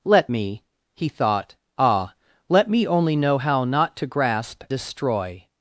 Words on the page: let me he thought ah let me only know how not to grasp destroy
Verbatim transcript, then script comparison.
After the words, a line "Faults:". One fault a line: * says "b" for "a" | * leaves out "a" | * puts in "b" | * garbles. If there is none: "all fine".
let me he thought ah let me only know how not to grasp destroy
Faults:
all fine